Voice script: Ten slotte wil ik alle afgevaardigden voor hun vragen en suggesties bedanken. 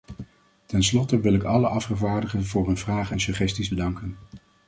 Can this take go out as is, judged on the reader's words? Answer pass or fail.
pass